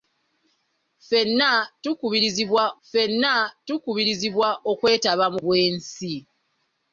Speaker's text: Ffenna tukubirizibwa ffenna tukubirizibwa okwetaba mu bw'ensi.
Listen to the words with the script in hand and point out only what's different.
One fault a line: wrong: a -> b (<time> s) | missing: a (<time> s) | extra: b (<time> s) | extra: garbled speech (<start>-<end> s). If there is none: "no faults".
no faults